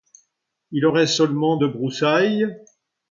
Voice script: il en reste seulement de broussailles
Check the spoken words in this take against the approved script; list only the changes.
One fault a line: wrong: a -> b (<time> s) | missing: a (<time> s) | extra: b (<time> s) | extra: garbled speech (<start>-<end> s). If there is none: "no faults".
no faults